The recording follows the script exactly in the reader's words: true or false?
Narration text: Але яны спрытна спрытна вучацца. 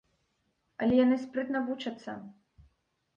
false